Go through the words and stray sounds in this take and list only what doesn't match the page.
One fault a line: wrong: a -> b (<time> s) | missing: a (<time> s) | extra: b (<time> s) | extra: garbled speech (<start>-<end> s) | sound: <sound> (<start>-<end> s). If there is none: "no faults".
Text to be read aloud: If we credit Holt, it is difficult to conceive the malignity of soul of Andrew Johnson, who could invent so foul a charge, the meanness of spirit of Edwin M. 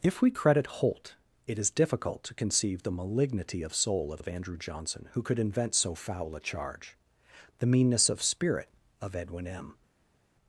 extra: of (4.2 s)